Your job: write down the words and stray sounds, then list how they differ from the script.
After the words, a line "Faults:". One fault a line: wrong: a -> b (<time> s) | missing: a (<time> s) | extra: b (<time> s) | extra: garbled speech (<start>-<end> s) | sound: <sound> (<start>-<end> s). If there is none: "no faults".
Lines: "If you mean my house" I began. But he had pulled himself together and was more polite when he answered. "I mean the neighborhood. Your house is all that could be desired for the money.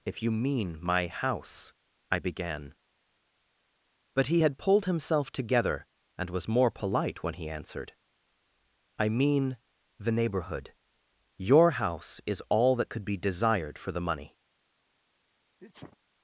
"If you mean my house" I began. But he had pulled himself together and was more polite when he answered. "I mean the neighborhood. Your house is all that could be desired for the money.
Faults:
sound: sneeze (15.6-16.0 s)